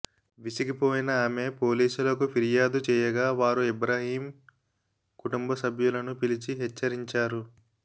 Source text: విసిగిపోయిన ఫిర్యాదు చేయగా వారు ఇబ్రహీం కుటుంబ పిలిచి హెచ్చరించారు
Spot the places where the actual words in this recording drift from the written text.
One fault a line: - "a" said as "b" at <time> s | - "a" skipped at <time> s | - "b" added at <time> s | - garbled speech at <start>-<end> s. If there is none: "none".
- "ఆమె పోలీసులకు" added at 1.2 s
- "సభ్యులను" added at 5.6 s